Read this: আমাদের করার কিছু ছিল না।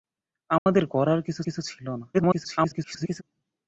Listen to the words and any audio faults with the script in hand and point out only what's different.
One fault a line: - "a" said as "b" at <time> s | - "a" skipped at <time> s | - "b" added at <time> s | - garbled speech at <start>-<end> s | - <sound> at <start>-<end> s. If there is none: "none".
- dropout at 0.6-0.7 s
- "কিছু" added at 1.4 s
- garbled speech at 2.1-3.2 s